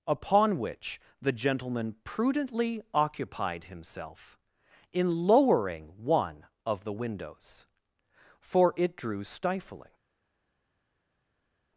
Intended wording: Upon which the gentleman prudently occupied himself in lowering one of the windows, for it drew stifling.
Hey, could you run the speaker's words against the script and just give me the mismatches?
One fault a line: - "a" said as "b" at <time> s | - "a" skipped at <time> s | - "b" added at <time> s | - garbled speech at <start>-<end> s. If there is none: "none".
none